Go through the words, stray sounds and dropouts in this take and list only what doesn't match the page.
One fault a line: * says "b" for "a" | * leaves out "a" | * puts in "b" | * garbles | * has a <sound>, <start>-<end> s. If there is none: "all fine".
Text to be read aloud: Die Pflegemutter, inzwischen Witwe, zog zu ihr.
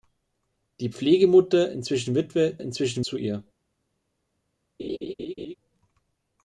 * says "inzwischen" for "zog"
* has a laugh, 4.8-5.6 s